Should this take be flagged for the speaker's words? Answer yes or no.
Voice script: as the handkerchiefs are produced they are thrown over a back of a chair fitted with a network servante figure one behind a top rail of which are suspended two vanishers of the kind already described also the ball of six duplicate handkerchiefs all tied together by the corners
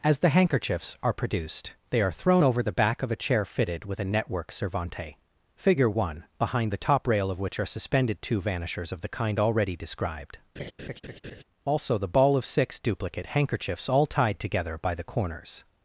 yes